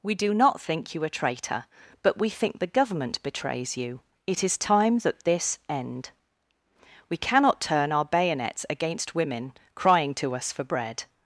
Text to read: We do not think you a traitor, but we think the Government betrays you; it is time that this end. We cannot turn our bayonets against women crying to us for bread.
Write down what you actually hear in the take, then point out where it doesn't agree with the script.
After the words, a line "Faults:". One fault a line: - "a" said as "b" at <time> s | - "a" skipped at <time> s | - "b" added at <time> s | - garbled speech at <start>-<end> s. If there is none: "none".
We do not think you a traitor, but we think the Government betrays you; it is time that this end. We cannot turn our bayonets against women crying to us for bread.
Faults:
none